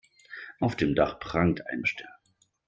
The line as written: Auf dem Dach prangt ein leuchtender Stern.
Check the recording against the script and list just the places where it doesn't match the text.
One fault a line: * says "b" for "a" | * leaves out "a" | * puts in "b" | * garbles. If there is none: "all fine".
* leaves out "leuchtender"